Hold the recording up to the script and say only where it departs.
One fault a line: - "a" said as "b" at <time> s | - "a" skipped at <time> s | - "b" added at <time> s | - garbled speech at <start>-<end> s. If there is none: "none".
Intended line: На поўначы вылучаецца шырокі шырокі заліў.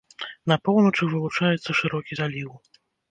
- "шырокі" skipped at 2.2 s